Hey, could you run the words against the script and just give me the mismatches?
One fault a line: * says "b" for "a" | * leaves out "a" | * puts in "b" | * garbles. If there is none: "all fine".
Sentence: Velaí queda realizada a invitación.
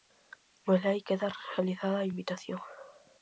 all fine